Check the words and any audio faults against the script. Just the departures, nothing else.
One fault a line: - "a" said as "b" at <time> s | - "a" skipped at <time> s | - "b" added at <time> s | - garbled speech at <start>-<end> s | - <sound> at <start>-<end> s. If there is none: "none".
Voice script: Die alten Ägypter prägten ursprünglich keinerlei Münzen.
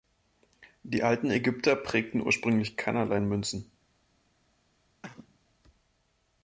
- cough at 5.0-5.4 s